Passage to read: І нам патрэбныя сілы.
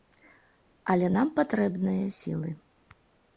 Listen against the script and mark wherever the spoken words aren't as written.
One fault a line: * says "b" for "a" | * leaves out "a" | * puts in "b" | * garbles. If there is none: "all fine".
* says "Але" for "І"